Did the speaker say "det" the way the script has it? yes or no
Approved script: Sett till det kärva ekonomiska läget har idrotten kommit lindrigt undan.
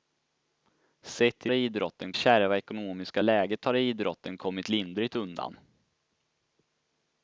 no